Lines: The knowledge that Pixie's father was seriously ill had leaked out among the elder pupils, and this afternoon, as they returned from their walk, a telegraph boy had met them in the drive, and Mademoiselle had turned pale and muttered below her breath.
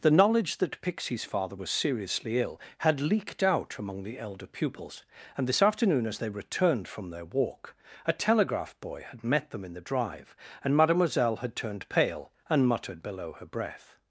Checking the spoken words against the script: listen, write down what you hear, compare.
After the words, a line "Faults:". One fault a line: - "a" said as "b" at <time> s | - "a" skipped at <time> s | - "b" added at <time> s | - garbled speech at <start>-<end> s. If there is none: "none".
The knowledge that Pixie's father was seriously ill had leaked out among the elder pupils, and this afternoon, as they returned from their walk, a telegraph boy had met them in the drive, and Mademoiselle had turned pale and muttered below her breath.
Faults:
none